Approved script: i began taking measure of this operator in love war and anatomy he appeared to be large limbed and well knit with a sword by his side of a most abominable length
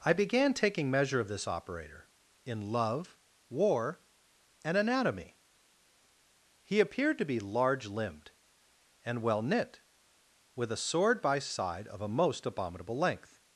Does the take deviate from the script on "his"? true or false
true